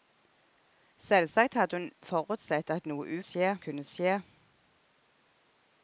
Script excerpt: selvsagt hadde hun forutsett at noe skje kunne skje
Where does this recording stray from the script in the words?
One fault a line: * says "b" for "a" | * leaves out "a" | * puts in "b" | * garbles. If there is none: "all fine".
all fine